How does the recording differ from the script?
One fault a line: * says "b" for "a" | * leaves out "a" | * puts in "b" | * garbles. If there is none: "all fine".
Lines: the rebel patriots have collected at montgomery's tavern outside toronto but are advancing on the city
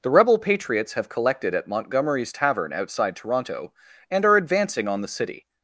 * says "and" for "but"